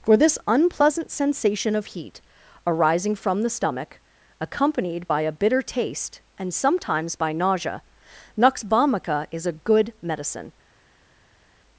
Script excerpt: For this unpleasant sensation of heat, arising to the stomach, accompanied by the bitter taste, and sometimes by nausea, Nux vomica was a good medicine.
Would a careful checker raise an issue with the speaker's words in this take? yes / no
yes